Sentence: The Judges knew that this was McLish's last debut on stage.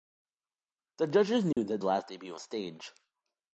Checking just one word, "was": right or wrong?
wrong